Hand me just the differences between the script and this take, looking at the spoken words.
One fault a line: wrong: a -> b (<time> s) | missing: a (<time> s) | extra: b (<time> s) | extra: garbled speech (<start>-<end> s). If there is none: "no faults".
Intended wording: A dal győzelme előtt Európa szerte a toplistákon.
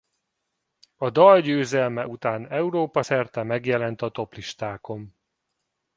wrong: előtt -> után (2.0 s)
extra: megjelent (3.4 s)